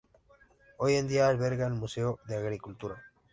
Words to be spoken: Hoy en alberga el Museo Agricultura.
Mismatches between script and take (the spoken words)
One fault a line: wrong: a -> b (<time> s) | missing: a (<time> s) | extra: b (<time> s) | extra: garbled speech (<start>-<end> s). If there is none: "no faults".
extra: día (1.1 s)
extra: de (2.2 s)